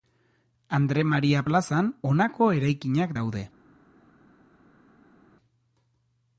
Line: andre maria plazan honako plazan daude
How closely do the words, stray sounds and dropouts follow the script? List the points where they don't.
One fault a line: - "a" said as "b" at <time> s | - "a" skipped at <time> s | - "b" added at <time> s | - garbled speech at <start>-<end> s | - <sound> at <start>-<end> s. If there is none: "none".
- "plazan" said as "eraikinak" at 2.6 s